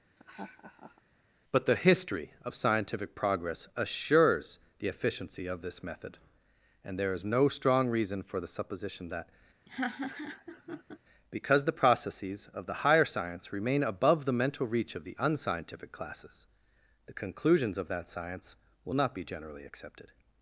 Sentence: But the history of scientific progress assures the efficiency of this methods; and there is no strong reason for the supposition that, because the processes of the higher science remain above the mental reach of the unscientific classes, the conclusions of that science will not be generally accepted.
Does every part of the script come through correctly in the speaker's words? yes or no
no